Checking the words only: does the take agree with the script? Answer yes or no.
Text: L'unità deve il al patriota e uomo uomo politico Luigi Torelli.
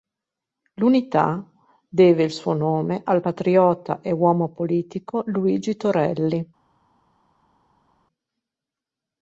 no